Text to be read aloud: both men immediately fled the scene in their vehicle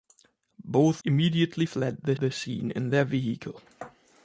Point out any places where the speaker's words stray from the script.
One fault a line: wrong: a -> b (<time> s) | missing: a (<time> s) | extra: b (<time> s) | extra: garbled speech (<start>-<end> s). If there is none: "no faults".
missing: men (1.0 s)
extra: the (2.2 s)